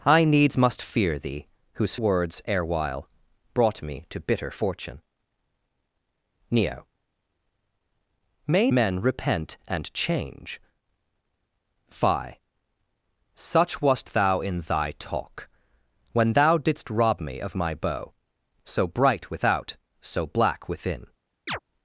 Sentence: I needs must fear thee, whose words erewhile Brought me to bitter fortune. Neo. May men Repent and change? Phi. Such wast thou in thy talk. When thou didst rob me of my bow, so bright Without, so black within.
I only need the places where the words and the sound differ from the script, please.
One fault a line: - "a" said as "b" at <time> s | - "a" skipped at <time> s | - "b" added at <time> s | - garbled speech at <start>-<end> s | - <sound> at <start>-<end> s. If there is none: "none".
- chirp at 21.5-21.6 s